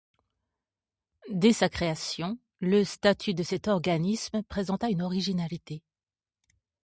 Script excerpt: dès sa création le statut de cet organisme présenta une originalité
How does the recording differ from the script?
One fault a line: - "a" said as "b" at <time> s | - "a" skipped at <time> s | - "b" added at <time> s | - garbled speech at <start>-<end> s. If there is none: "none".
none